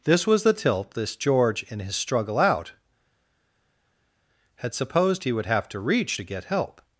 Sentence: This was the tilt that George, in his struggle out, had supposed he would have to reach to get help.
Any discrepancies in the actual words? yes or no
yes